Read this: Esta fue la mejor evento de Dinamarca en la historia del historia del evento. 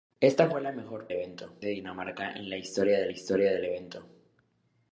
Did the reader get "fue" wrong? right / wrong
right